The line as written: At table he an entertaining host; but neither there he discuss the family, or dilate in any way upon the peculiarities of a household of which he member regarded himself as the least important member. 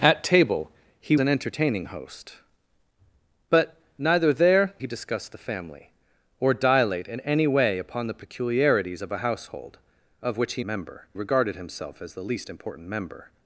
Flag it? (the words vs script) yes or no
no